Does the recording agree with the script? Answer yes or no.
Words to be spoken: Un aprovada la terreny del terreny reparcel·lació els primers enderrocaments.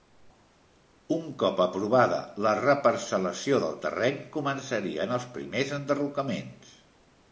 no